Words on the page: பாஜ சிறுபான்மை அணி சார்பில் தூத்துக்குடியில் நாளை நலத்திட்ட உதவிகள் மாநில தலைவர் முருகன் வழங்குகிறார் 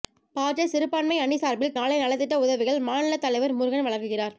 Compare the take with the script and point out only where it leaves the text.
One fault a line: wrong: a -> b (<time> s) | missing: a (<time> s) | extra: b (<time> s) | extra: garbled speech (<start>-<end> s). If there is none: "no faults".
missing: தூத்துக்குடியில் (1.8 s)